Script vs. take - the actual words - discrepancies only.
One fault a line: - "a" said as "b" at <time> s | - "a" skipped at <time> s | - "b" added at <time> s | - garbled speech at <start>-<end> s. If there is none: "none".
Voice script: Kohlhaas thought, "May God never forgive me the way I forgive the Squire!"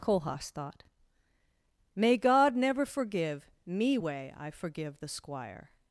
- "the" skipped at 4.0 s